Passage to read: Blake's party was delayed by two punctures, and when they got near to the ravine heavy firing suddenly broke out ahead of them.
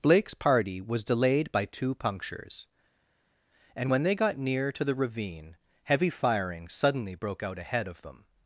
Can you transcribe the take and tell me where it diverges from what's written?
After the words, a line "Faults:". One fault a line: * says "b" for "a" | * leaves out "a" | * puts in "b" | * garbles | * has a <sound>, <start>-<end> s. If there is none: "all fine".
Blake's party was delayed by two punctures, and when they got near to the ravine heavy firing suddenly broke out ahead of them.
Faults:
all fine